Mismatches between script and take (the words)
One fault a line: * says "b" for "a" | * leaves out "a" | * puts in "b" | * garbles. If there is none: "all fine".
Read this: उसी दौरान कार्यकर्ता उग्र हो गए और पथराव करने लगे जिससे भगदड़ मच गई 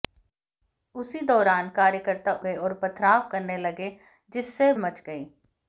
* leaves out "उग्र हो"
* leaves out "भगदड़"